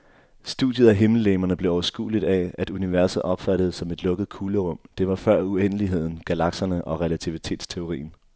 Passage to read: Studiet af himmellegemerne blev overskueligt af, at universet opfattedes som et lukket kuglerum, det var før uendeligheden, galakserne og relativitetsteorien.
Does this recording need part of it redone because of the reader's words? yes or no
no